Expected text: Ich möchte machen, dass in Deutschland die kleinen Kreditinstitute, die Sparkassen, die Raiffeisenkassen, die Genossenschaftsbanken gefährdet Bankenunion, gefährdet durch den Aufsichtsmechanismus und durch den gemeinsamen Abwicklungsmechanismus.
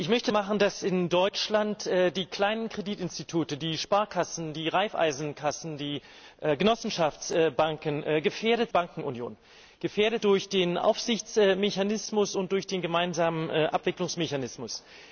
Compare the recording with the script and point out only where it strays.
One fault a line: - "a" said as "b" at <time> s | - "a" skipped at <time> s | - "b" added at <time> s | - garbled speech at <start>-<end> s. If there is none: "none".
none